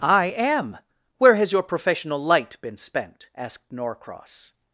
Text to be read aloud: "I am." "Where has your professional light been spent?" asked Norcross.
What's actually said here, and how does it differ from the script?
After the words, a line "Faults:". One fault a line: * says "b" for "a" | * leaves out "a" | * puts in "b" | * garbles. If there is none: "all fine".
"I am." "Where has your professional light been spent?" asked Norcross.
Faults:
all fine